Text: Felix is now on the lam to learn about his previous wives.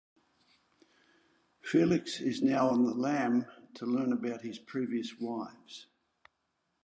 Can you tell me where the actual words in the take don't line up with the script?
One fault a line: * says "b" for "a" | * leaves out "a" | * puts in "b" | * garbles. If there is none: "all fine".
all fine